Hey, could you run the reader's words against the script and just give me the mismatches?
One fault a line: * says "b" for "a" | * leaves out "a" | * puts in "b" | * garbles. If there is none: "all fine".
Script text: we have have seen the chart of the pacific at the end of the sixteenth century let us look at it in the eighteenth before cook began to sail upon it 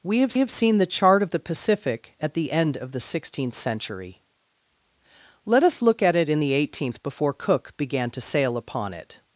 all fine